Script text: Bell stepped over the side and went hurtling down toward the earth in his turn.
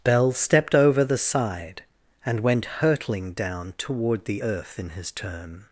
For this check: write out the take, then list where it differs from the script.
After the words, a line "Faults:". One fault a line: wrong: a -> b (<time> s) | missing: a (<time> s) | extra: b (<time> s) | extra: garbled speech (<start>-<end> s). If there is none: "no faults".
Bell stepped over the side and went hurtling down toward the earth in his turn.
Faults:
no faults